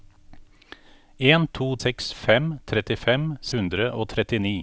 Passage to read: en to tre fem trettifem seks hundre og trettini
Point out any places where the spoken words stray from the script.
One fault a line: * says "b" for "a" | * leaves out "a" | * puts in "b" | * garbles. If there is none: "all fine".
* says "seks" for "tre"
* leaves out "seks"